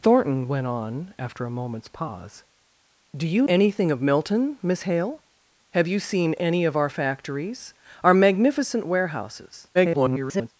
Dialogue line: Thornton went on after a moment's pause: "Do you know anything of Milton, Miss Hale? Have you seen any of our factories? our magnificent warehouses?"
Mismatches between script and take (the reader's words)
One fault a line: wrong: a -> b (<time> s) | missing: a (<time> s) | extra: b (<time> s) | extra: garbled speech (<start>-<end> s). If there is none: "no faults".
missing: know (3.5 s)
extra: garbled speech (9.7-10.5 s)